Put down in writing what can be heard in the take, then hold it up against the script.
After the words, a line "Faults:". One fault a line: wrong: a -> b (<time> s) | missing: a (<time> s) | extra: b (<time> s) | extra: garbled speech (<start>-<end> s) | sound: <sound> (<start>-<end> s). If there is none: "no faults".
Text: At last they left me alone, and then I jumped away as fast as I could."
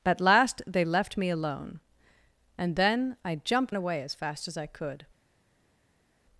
At last they left me alone, and then I jumped away as fast as I could."
Faults:
no faults